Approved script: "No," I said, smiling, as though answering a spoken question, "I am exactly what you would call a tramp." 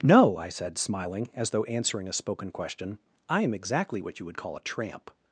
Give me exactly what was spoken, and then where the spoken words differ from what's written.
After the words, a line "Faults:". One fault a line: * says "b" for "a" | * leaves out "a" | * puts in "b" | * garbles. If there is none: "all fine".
"No," I said, smiling, as though answering a spoken question, "I am exactly what you would call a tramp."
Faults:
all fine